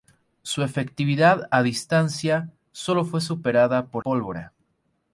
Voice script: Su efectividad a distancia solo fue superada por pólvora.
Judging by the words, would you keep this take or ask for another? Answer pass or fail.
pass